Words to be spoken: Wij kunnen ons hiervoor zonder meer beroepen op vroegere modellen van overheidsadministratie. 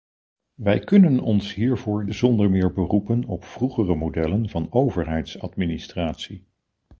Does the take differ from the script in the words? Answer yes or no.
no